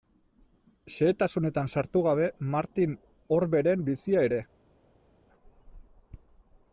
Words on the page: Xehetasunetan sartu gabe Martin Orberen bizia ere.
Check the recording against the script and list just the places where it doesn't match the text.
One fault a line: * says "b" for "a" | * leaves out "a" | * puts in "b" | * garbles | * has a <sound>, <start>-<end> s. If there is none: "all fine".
all fine